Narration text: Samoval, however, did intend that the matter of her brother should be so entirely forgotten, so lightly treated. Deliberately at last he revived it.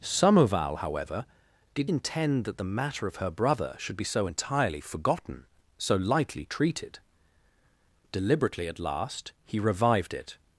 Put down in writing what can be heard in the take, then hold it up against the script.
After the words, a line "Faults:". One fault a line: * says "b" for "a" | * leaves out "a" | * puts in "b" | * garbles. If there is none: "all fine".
Samoval, however, did intend that the matter of her brother should be so entirely forgotten, so lightly treated. Deliberately at last he revived it.
Faults:
all fine